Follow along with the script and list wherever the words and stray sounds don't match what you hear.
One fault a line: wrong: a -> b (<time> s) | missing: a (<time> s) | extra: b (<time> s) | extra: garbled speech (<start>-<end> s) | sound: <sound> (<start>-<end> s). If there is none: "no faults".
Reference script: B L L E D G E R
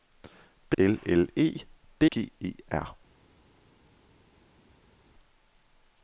no faults